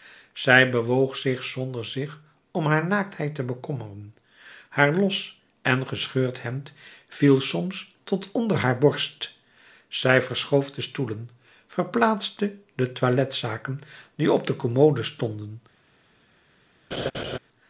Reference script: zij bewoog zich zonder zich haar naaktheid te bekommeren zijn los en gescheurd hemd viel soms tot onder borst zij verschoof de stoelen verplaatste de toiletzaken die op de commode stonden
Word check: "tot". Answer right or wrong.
right